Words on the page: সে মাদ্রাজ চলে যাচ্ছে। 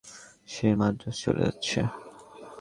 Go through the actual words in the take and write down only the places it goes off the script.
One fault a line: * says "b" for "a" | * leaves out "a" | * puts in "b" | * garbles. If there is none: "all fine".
all fine